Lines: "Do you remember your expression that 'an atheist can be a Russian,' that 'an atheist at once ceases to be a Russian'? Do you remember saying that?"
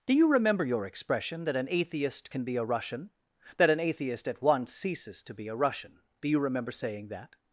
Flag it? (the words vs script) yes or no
no